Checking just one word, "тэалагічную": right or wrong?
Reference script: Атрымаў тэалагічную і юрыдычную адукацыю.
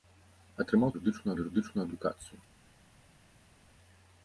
wrong